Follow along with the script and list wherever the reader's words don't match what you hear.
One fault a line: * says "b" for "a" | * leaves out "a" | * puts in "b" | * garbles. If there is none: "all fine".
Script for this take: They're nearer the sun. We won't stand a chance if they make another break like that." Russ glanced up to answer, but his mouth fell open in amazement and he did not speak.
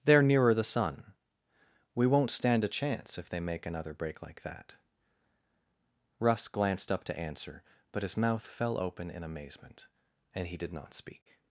all fine